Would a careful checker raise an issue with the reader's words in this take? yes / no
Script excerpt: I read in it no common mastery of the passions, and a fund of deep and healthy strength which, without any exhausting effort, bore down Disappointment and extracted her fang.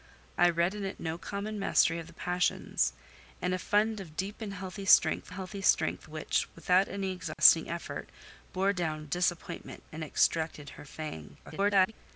yes